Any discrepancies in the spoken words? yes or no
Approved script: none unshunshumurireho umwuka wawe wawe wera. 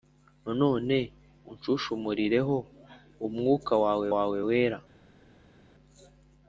no